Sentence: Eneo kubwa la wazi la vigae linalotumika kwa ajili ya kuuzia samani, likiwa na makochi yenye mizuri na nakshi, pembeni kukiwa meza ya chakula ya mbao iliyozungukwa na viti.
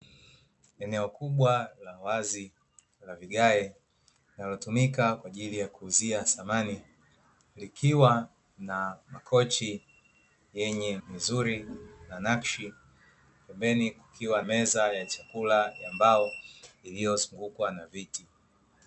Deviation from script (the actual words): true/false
false